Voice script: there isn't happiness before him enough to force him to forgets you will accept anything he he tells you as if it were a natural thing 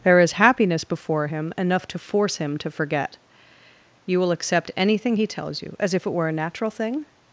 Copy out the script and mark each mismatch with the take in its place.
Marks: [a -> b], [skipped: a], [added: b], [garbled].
there [isn't -> is] happiness before him enough to force him to [forgets -> forget] you will accept anything he [skipped: he] tells you as if it were a natural thing